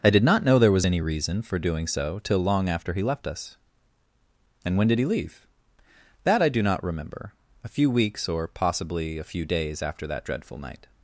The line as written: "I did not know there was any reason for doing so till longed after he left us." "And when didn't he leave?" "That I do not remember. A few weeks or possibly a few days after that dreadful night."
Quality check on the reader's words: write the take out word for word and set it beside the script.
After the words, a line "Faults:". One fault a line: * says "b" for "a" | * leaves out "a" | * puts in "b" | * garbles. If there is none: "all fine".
"I did not know there was any reason for doing so till long after he left us." "And when did he leave?" "That I do not remember. A few weeks or possibly a few days after that dreadful night."
Faults:
* says "long" for "longed"
* says "did" for "didn't"